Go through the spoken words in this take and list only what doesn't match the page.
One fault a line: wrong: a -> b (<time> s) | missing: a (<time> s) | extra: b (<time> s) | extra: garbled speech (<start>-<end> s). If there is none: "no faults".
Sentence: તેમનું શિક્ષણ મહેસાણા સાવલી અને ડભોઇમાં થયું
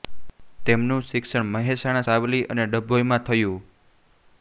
no faults